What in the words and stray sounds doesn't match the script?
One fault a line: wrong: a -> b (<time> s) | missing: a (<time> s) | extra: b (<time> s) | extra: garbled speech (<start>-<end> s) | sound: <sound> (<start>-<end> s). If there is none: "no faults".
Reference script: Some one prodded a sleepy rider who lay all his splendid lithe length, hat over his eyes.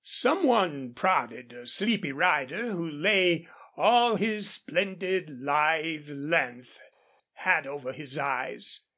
no faults